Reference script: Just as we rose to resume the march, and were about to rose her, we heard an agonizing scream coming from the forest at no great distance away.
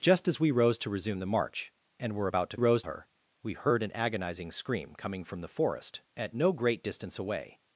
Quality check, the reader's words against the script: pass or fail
pass